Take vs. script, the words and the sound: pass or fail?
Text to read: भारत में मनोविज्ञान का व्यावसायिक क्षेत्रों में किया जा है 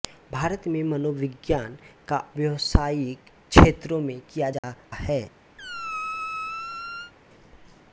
fail